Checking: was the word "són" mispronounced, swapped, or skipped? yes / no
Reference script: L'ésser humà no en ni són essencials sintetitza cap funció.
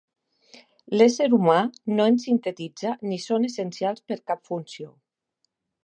no